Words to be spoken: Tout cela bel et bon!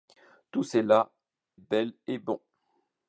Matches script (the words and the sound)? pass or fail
pass